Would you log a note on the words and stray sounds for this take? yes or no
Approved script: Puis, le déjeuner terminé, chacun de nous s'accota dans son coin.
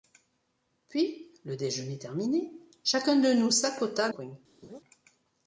yes